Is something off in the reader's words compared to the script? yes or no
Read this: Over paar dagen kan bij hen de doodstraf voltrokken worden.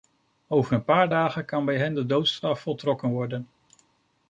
yes